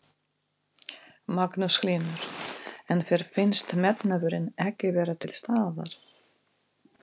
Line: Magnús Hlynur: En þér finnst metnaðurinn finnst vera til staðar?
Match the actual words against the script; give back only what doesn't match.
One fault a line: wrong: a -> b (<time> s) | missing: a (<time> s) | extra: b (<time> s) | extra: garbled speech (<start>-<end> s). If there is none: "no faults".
wrong: finnst -> ekki (4.7 s)